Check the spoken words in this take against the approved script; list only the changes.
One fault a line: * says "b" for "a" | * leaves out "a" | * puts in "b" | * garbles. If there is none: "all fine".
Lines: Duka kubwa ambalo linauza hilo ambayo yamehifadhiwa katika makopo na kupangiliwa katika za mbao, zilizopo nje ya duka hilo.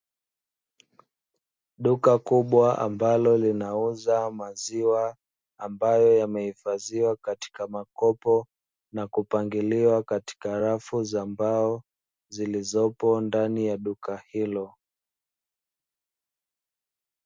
* says "maziwa" for "hilo"
* puts in "rafu"
* says "ndani" for "nje"